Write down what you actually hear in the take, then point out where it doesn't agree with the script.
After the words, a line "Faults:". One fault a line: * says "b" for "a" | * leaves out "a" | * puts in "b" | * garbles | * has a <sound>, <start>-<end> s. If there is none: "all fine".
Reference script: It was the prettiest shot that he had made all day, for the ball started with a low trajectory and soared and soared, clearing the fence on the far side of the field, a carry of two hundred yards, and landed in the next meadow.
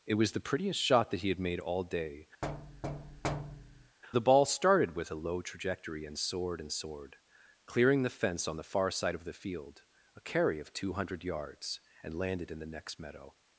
It was the prettiest shot that he had made all day, the ball started with a low trajectory and soared and soared, clearing the fence on the far side of the field, a carry of two hundred yards, and landed in the next meadow.
Faults:
* leaves out "for"
* has a thud, 2.4-4.0 s